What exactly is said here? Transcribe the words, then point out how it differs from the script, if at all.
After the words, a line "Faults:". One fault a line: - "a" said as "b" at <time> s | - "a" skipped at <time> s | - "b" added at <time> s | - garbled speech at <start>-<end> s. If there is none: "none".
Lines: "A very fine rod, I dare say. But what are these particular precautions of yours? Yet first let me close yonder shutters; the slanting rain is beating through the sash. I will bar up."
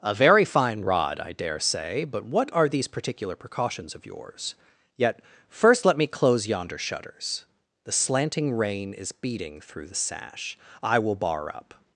"A very fine rod, I dare say. But what are these particular precautions of yours? Yet first let me close yonder shutters; the slanting rain is beating through the sash. I will bar up."
Faults:
none